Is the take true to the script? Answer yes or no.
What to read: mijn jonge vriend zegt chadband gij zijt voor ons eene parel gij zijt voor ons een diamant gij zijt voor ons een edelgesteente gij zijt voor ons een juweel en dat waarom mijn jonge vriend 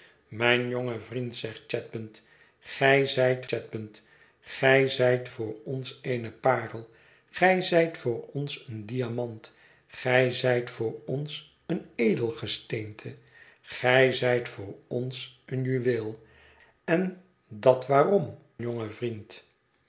no